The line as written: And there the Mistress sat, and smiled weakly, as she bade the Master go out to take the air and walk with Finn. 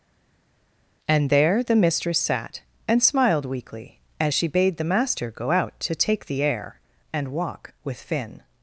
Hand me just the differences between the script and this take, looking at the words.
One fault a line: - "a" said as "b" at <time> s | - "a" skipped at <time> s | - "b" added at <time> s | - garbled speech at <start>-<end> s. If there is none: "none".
none